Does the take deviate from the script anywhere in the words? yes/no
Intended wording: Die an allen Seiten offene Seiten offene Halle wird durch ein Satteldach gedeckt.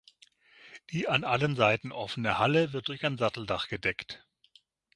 yes